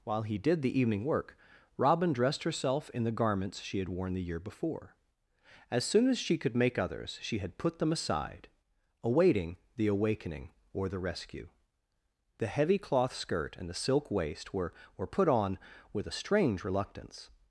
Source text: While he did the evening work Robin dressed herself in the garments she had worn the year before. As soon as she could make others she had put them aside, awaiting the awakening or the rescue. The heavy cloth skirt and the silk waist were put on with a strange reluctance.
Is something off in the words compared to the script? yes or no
yes